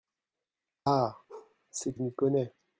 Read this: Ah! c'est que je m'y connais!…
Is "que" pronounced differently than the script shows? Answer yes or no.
yes